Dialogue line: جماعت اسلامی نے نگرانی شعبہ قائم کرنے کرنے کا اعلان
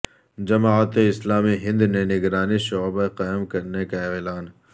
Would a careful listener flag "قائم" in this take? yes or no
no